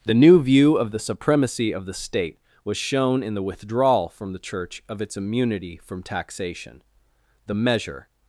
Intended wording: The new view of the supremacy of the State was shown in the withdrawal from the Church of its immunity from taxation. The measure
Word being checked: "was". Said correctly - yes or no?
yes